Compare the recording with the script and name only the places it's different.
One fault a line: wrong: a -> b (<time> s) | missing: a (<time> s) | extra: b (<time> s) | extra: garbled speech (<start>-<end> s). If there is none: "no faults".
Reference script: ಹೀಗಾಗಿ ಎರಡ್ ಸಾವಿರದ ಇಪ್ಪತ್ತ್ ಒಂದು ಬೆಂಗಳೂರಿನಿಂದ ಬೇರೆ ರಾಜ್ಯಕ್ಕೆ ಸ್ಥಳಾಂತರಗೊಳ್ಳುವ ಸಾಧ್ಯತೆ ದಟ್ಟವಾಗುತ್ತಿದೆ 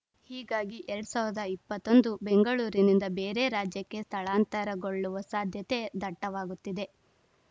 no faults